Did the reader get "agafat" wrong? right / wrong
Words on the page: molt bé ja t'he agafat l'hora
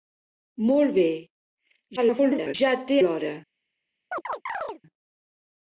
wrong